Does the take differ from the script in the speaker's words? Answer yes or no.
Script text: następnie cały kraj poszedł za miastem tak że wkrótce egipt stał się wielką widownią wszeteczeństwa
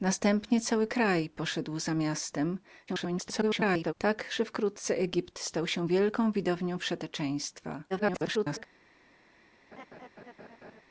yes